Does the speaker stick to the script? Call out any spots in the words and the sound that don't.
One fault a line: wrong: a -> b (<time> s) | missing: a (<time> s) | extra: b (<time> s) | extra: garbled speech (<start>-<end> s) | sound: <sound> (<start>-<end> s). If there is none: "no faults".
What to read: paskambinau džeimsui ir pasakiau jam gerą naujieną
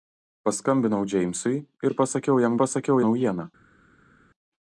wrong: gerą -> pasakiau (2.6 s)